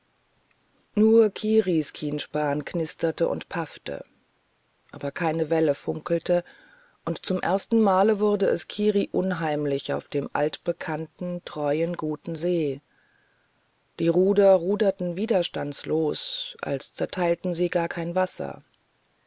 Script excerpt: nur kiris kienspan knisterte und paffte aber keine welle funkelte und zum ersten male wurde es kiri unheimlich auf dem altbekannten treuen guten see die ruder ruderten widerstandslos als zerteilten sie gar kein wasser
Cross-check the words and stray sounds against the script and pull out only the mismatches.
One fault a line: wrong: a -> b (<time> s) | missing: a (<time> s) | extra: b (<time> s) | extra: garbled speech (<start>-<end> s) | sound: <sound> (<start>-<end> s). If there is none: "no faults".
no faults